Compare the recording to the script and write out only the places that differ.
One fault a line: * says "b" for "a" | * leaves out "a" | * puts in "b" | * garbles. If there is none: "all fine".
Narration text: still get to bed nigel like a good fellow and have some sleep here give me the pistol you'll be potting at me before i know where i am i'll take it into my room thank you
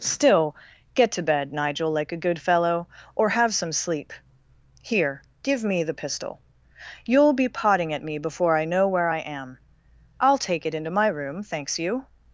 * says "or" for "and"
* says "thanks" for "thank"